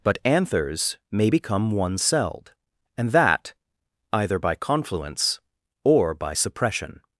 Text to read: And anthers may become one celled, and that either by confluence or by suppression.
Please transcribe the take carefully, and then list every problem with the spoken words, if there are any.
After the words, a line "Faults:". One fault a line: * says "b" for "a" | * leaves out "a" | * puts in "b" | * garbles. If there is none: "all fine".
But anthers may become one celled, and that either by confluence or by suppression.
Faults:
* says "But" for "And"